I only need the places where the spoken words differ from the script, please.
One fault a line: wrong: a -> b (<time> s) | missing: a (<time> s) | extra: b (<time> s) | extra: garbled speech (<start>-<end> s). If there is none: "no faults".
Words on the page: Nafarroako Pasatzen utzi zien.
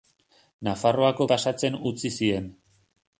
no faults